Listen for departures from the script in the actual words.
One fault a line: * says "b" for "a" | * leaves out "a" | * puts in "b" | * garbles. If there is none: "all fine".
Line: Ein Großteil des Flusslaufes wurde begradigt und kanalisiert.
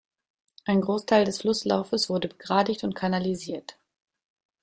all fine